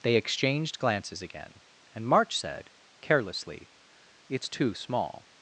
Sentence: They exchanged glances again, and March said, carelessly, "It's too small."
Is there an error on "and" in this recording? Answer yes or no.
no